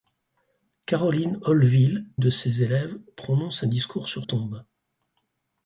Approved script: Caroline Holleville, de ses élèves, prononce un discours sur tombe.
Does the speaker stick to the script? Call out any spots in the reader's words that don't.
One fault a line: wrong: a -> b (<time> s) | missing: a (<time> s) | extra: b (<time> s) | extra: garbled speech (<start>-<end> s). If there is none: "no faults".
no faults